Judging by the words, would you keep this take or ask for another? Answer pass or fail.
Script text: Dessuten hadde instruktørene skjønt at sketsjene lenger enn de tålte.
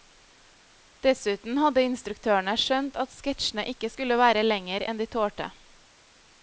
fail